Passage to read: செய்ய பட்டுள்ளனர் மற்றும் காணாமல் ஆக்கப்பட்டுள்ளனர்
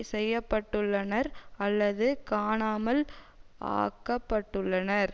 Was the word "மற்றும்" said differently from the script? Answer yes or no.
yes